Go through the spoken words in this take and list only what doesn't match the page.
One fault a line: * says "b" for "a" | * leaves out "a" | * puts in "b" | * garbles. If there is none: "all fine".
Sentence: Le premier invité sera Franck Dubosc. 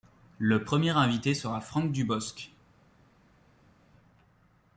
all fine